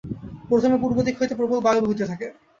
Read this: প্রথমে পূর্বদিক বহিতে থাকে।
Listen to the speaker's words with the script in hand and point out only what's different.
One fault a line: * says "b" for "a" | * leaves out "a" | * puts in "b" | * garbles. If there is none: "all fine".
* puts in "হইতে প্রবল বায়ু"